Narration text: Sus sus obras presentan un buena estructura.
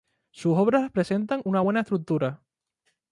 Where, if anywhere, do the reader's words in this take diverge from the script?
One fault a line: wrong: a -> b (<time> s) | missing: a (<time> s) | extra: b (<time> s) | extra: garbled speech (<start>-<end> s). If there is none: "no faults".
missing: sus (0.6 s)
wrong: un -> una (1.4 s)